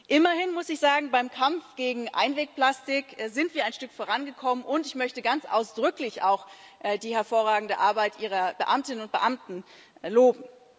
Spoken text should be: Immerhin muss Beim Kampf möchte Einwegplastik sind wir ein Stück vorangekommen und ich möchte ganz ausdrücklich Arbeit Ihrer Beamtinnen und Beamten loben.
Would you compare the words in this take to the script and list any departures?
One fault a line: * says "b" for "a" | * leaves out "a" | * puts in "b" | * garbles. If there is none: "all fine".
* puts in "ich sagen"
* says "gegen" for "möchte"
* puts in "auch die hervorragende"